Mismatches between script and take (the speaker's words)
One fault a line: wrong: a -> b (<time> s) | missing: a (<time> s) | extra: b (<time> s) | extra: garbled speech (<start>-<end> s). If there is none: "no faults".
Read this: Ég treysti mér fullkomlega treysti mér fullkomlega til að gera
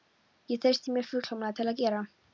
missing: treysti mér fullkomlega (1.6 s)